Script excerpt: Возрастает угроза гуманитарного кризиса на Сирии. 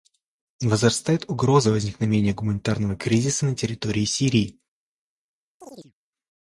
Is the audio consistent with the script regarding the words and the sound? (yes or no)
no